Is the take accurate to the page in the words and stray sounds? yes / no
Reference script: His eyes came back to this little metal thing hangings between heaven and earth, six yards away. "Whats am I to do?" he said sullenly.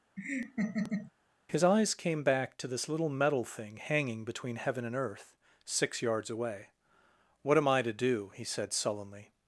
no